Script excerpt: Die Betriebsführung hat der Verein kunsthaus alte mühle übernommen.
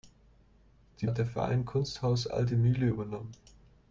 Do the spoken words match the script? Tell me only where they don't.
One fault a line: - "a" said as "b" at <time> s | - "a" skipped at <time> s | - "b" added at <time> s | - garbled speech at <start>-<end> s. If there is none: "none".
- "Betriebsführung" skipped at 1.1 s